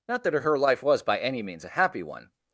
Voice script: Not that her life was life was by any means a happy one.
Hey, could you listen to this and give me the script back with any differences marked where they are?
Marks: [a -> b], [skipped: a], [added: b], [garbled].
Not that her life was [skipped: life was] by any means a happy one.